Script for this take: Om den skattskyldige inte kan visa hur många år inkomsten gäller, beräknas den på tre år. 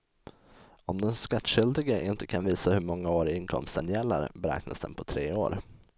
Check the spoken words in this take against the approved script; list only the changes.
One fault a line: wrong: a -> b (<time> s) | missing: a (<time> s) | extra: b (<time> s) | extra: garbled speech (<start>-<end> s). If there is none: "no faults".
no faults